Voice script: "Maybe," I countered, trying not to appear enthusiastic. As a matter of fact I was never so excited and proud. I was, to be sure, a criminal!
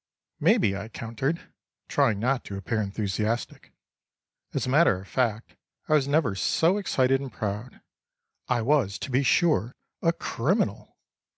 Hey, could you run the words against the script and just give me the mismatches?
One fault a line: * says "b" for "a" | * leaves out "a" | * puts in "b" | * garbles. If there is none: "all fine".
all fine